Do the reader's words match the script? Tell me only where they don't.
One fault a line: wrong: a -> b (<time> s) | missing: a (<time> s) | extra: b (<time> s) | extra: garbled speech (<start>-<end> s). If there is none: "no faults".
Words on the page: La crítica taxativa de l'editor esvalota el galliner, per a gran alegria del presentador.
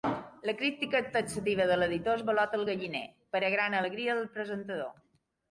no faults